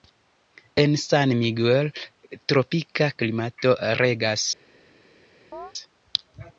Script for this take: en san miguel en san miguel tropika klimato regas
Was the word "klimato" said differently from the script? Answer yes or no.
no